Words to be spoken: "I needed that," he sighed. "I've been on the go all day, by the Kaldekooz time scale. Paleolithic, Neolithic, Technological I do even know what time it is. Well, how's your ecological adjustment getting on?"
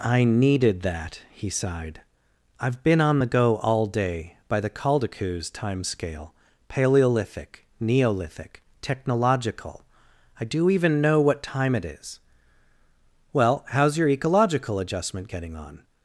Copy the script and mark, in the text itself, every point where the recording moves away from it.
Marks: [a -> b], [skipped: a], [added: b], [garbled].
"I needed that," he sighed. "I've been on the go all day, by the Kaldekooz time scale. Paleolithic, Neolithic, Technological I do even know what time it is. Well, how's your ecological adjustment getting on?"